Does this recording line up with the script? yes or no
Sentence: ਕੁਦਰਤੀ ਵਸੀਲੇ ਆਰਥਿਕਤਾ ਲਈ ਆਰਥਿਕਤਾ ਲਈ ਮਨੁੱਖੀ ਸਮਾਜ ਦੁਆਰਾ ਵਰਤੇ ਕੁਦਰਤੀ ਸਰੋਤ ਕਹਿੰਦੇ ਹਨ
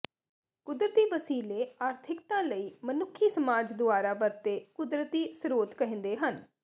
no